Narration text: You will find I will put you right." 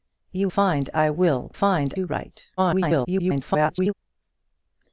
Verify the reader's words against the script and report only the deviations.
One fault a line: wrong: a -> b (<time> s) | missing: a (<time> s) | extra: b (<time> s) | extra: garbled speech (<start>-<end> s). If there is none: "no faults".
missing: will (0.5 s)
wrong: put -> find (1.5 s)
extra: garbled speech (2.6-3.9 s)